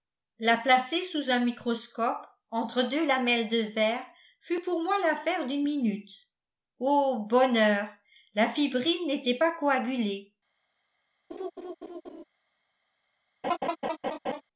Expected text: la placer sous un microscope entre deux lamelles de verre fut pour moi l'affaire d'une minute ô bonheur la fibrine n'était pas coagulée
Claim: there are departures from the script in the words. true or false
false